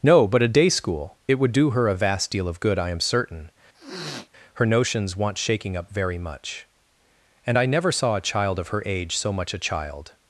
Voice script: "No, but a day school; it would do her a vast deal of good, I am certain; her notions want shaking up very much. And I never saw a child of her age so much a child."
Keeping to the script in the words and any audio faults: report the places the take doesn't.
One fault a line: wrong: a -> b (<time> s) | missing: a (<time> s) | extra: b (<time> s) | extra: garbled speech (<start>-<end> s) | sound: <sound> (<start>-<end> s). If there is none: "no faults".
sound: sniff (3.7-4.3 s)